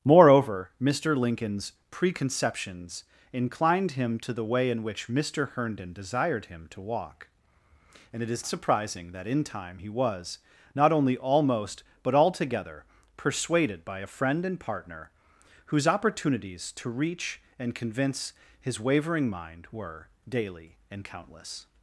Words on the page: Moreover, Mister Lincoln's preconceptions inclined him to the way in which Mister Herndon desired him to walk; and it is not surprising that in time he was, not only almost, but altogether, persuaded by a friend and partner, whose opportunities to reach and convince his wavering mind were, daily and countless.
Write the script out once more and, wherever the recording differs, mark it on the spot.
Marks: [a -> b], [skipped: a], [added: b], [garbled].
Moreover, Mister Lincoln's preconceptions inclined him to the way in which Mister Herndon desired him to walk; and it is [skipped: not] surprising that in time he was, not only almost, but altogether, persuaded by a friend and partner, whose opportunities to reach and convince his wavering mind were, daily and countless.